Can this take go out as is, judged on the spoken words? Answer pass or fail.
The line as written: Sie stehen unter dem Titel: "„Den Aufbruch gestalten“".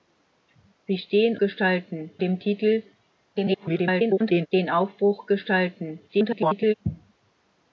fail